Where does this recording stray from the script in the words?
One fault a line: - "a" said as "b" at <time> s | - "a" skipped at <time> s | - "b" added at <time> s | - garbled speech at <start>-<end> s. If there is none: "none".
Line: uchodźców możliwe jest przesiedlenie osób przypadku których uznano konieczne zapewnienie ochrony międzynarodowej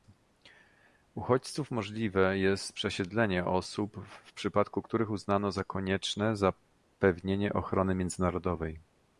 - "w" added at 4.1 s
- "za" added at 5.5 s